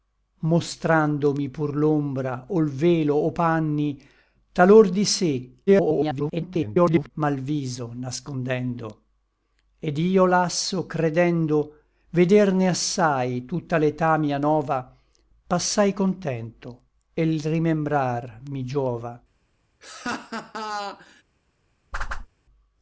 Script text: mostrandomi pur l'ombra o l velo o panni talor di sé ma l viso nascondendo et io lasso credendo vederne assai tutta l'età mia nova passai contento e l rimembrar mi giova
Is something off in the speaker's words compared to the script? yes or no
yes